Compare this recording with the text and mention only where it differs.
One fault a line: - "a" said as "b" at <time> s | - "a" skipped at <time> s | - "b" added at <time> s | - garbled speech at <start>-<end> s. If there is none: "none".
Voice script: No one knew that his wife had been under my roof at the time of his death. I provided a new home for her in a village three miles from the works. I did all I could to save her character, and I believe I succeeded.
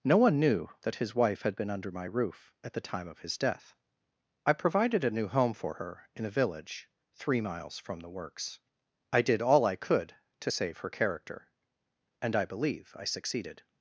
none